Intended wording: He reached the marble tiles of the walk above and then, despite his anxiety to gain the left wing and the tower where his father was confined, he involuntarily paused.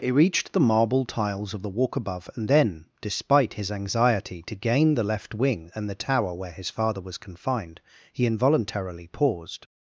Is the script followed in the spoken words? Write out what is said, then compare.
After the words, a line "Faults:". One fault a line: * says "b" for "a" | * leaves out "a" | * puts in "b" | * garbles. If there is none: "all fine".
He reached the marble tiles of the walk above and then, despite his anxiety to gain the left wing and the tower where his father was confined, he involuntarily paused.
Faults:
all fine